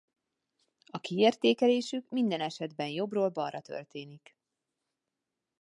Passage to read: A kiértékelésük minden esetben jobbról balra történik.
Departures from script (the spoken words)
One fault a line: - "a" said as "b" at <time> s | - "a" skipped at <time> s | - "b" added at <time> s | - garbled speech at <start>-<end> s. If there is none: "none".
none